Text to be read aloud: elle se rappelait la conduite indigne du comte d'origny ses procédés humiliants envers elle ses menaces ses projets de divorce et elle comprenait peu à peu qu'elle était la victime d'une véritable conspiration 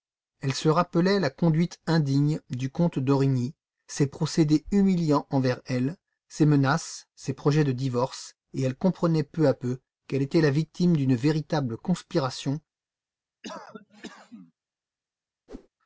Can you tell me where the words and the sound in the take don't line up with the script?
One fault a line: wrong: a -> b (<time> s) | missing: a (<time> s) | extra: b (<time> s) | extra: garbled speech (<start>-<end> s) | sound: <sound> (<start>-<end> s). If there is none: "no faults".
sound: cough (13.4-14.5 s)
sound: whoosh (15.5-15.7 s)